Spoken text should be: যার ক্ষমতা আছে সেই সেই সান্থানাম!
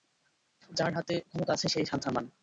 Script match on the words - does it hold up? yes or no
no